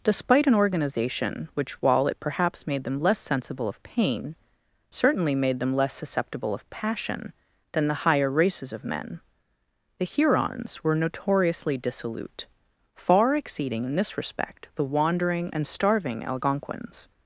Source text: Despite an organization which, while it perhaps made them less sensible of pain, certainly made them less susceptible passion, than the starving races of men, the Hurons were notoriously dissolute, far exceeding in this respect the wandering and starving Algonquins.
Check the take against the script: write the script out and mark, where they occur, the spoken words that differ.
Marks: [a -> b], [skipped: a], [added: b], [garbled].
Despite an organization which, while it perhaps made them less sensible of pain, certainly made them less susceptible [added: of] passion, than the [starving -> higher] races of men, the Hurons were notoriously dissolute, far exceeding in this respect the wandering and starving Algonquins.